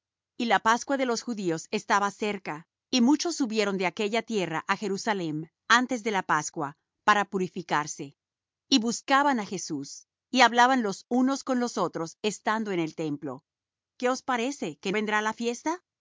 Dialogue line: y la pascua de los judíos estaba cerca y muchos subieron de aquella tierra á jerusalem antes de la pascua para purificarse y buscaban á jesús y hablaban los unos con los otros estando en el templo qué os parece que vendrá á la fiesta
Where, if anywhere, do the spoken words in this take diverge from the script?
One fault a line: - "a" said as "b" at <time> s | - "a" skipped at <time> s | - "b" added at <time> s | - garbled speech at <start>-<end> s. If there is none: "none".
none